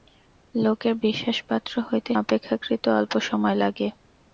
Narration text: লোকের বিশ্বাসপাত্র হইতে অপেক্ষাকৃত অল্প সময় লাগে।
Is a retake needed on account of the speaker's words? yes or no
no